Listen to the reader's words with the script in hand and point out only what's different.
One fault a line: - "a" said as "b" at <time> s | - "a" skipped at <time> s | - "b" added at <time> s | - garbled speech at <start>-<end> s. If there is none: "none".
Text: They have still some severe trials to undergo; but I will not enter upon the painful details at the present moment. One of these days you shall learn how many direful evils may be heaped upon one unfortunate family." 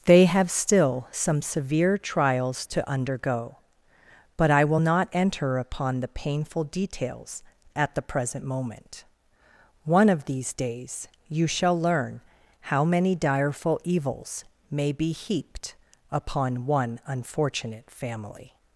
none